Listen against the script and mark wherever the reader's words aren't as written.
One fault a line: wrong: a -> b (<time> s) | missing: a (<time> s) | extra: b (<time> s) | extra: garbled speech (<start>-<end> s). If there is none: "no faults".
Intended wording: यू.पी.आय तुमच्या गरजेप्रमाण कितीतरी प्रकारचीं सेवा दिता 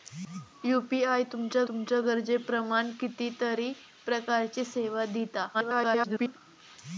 extra: तुमच्या (1.7 s)
extra: garbled speech (5.5-6.4 s)